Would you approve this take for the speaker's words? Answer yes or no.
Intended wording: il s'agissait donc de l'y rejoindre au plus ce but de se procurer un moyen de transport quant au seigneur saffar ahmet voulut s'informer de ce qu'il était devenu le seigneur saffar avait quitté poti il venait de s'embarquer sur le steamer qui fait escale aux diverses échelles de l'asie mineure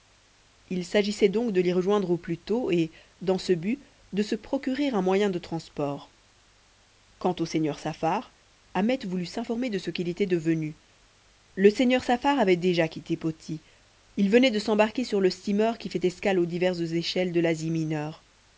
no